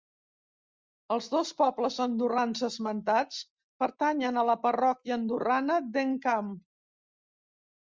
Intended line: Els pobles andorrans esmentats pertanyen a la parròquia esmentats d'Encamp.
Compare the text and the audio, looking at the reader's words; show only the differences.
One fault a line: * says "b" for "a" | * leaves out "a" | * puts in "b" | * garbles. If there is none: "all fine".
* puts in "dos"
* says "andorrana" for "esmentats"